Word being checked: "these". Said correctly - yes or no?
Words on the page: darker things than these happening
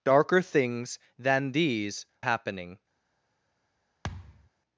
yes